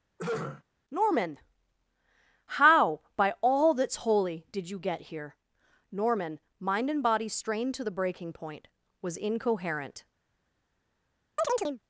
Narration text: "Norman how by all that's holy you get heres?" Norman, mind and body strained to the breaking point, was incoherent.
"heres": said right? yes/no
no